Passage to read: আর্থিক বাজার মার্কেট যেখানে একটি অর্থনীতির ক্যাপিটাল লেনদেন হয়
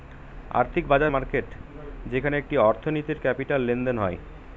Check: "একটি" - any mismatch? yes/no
no